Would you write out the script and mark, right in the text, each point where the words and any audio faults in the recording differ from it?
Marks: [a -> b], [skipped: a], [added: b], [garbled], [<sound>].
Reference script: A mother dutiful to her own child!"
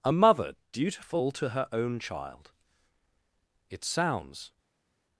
A mother dutiful to her own child!" [added: It sounds]